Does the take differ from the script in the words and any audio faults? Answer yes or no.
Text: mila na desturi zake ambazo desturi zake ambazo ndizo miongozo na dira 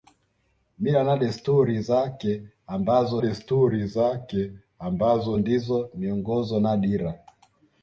no